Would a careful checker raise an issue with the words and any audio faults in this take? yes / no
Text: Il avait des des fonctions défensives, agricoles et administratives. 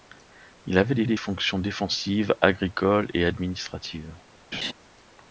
yes